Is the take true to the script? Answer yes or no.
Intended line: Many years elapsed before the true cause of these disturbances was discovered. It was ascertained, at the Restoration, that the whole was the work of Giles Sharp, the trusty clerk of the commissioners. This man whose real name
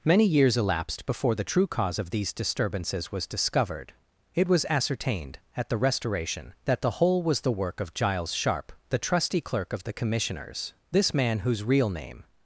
yes